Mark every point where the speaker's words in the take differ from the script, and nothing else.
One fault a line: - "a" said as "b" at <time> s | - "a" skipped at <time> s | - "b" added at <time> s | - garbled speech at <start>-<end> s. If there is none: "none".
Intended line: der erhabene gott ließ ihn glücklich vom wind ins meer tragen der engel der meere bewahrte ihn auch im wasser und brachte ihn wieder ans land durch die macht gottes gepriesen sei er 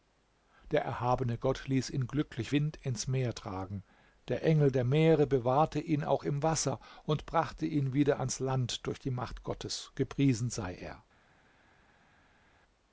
- "vom" skipped at 2.5 s